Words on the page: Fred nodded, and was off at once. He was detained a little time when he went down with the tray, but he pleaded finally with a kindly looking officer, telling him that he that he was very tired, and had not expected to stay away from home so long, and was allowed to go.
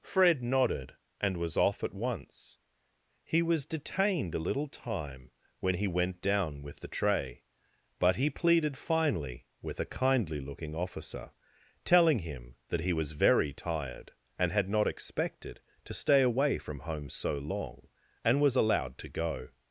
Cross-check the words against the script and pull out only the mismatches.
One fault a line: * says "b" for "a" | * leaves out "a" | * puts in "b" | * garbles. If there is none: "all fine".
* leaves out "that he"